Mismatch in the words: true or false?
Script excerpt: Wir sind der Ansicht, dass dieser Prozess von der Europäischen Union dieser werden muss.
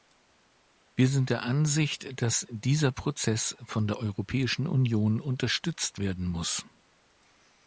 true